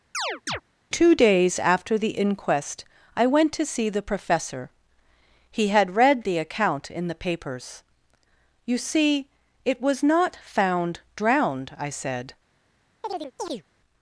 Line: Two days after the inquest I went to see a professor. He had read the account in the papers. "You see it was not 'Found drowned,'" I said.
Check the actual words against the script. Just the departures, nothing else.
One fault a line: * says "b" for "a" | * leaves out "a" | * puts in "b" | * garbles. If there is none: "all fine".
* says "the" for "a"